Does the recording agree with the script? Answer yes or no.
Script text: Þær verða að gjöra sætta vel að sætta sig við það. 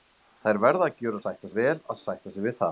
yes